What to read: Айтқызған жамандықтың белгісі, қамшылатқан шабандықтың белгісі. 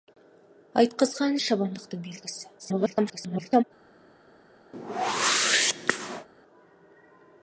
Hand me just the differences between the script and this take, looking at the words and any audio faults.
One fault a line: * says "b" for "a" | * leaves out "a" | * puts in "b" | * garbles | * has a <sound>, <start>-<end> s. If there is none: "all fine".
* leaves out "жамандықтың белгісі қамшылатқан"
* garbles
* has a whoosh, 4.7-6.3 s